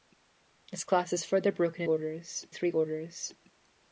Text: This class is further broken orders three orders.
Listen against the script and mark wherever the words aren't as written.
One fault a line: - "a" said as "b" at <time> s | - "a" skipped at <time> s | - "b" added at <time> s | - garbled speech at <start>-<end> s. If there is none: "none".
none